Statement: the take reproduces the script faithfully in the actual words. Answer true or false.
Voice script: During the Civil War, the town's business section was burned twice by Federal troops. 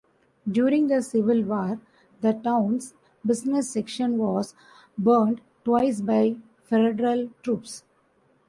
true